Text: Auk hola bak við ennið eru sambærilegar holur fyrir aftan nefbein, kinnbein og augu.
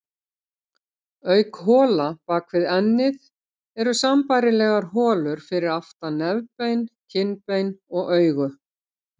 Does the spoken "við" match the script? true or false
true